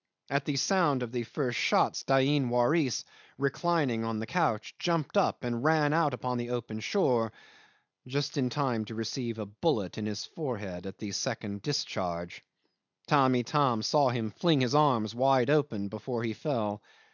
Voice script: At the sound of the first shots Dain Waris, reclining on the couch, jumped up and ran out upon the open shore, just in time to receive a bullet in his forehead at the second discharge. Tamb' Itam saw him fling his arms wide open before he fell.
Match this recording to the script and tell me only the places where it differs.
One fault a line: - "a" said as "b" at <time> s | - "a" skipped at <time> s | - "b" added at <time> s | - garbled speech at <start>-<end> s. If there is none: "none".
none